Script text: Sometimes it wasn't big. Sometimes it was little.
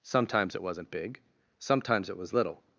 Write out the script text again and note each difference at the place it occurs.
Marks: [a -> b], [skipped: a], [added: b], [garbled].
Sometimes it wasn't big. Sometimes it was little.